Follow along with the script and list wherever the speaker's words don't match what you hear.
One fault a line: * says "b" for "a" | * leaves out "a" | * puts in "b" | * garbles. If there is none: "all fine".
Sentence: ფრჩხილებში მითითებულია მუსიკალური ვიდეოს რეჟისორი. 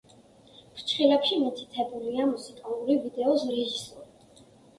all fine